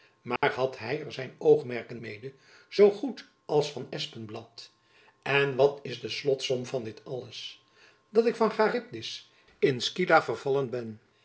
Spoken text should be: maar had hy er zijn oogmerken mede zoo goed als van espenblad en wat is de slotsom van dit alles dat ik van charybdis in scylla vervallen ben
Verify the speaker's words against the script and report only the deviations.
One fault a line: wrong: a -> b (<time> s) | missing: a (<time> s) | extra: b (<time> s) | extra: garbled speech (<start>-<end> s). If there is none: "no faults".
no faults